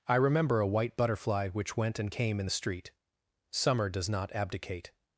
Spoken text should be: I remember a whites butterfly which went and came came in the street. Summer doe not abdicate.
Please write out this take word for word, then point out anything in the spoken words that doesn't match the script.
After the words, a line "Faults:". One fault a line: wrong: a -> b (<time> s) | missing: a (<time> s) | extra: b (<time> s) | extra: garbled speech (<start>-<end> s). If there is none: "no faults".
I remember a white butterfly which went and came in the street. Summer does not abdicate.
Faults:
wrong: whites -> white (0.7 s)
missing: came (2.4 s)
wrong: doe -> does (3.9 s)